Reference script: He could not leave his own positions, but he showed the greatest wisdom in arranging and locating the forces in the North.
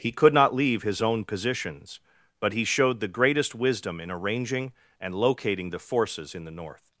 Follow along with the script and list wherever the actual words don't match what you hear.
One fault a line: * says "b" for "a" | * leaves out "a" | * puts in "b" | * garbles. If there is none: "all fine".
all fine